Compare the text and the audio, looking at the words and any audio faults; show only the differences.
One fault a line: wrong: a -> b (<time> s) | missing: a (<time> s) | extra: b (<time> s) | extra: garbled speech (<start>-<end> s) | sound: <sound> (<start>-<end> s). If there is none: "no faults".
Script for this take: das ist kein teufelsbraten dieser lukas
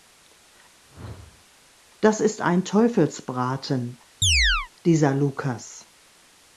sound: whoosh (0.9-1.5 s)
wrong: kein -> ein (2.4 s)
sound: chirp (4.2-4.7 s)